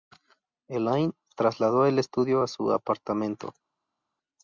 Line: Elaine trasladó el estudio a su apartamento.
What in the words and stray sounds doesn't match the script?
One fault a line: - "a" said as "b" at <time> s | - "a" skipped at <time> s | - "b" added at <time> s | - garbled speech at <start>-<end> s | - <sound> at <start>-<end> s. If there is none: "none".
none